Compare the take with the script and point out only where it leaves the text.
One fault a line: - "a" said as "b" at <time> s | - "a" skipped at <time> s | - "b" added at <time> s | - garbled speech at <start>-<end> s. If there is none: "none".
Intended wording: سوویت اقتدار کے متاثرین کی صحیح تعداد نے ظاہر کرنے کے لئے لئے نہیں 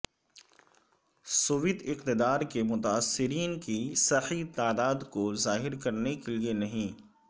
- "نے" said as "کو" at 5.1 s
- "لئے" skipped at 6.5 s